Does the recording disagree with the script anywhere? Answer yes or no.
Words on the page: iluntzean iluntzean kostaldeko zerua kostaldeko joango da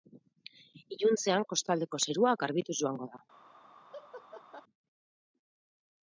yes